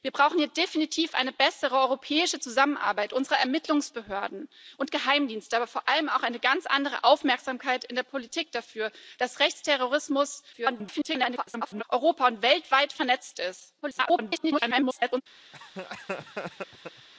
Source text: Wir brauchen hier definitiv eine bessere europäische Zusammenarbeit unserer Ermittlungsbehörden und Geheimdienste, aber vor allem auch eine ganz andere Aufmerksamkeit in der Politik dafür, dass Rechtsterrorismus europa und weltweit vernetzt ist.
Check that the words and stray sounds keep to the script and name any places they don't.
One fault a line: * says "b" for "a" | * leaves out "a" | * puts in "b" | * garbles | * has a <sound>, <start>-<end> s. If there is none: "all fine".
* garbles
* garbles
* has a laugh, 15.5-17.1 s